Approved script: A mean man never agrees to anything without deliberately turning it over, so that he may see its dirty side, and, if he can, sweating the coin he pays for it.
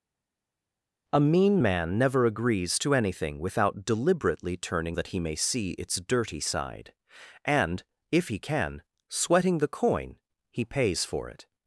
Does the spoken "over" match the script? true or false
false